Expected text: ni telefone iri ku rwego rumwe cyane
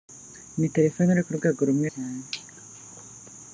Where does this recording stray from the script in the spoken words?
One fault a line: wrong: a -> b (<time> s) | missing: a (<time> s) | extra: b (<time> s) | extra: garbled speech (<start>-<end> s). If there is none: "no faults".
no faults